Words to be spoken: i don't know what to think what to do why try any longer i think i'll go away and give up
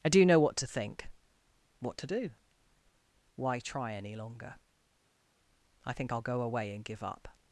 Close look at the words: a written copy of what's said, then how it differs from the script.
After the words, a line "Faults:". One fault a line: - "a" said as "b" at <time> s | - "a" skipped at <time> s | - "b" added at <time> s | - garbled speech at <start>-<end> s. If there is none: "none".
i do know what to think what to do why try any longer i think i'll go away and give up
Faults:
- "don't" said as "do" at 0.1 s